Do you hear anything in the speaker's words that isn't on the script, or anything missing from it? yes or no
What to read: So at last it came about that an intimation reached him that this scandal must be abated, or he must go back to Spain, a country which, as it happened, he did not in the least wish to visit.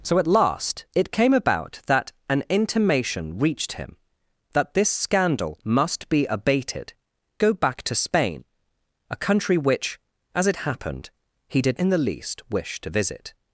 yes